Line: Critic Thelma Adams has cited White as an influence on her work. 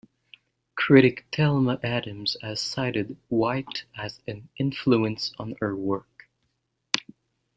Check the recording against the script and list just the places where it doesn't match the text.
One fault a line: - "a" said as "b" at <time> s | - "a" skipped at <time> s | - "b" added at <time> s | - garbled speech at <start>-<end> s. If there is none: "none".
none